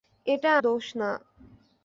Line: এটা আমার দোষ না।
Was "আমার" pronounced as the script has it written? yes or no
no